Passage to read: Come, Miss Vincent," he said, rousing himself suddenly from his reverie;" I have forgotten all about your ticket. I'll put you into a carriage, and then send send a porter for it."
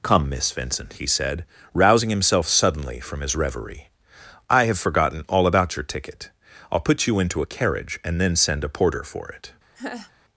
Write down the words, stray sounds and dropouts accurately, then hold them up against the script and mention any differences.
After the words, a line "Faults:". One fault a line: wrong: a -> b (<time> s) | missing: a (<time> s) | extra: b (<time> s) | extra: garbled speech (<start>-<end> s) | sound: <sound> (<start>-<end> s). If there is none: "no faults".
Come, Miss Vincent," he said, rousing himself suddenly from his reverie;" I have forgotten all about your ticket. I'll put you into a carriage, and then send a porter for it."
Faults:
missing: send (8.6 s)
sound: laugh (9.8-10.1 s)